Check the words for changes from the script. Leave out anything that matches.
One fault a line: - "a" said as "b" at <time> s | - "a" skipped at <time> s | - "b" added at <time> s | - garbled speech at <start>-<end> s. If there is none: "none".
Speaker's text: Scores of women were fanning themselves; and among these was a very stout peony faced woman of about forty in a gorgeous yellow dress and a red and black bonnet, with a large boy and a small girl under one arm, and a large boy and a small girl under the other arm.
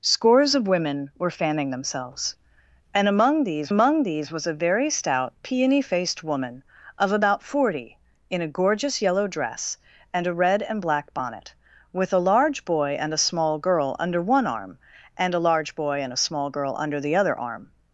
- "among these" added at 3.7 s